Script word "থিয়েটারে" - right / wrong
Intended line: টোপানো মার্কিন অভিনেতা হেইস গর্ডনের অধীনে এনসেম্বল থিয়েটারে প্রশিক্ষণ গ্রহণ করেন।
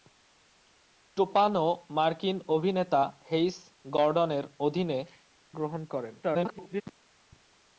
wrong